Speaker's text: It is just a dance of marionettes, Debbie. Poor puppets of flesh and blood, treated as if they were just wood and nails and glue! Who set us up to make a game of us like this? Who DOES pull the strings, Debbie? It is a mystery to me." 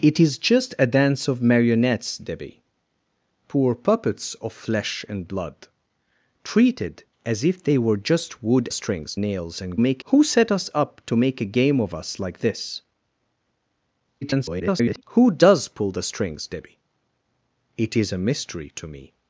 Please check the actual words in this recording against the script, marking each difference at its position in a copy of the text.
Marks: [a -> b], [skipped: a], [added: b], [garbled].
It is just a dance of marionettes, Debbie. Poor puppets of flesh and blood, treated as if they were just wood [and -> strings] nails and [glue! -> make] Who set us up to make a game of us like this? [garbled] Who DOES pull the strings, Debbie? It is a mystery to me."